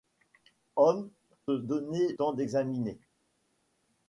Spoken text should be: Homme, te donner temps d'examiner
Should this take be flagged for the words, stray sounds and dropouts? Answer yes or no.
no